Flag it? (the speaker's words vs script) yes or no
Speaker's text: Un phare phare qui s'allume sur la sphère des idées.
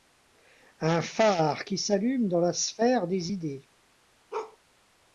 yes